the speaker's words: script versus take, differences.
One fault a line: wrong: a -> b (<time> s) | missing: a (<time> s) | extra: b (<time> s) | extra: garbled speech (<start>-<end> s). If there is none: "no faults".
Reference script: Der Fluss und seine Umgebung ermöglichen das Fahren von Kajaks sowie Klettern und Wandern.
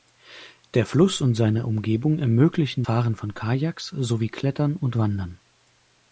missing: das (2.9 s)